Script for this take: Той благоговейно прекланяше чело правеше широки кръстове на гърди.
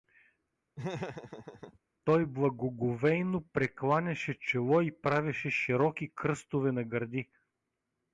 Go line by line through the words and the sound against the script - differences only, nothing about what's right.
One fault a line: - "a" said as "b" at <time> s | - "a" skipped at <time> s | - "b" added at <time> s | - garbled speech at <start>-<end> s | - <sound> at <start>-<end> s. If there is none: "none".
- laugh at 0.8-1.8 s
- "и" added at 4.8 s